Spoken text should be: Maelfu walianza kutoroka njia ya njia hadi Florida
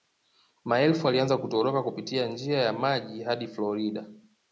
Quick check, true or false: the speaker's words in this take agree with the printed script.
false